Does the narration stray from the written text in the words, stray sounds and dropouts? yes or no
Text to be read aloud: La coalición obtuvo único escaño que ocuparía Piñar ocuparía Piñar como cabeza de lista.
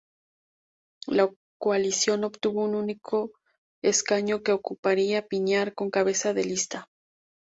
yes